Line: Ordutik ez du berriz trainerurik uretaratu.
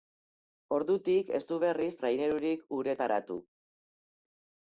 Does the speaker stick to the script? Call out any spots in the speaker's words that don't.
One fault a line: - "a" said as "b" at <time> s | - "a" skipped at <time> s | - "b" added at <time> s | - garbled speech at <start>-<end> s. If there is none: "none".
none